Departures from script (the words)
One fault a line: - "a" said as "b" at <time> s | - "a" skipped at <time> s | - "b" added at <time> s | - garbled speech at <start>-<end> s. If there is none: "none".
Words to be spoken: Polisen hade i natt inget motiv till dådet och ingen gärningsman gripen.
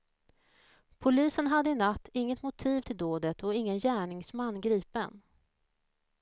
none